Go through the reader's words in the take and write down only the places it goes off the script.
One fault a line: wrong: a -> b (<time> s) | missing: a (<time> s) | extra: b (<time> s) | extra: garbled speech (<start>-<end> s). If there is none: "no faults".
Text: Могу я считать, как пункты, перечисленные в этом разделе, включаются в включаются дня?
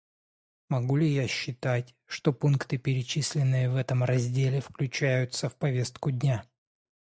extra: ли (0.9 s)
wrong: как -> что (2.1 s)
wrong: включаются -> повестку (5.5 s)